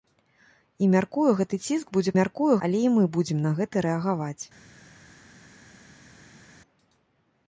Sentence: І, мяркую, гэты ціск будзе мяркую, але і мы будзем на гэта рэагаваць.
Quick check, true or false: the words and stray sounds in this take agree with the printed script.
true